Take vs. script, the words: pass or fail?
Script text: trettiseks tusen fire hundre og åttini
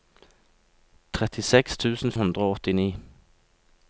fail